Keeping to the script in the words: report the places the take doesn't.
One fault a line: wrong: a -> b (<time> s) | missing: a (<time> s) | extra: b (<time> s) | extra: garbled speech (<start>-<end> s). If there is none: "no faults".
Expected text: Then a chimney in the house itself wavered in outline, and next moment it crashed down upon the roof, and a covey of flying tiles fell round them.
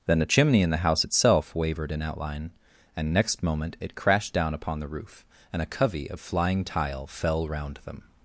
wrong: tiles -> tile (6.6 s)